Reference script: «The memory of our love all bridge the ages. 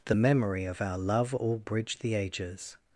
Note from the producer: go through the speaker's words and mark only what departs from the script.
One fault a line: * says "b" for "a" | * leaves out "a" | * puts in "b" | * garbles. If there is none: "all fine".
all fine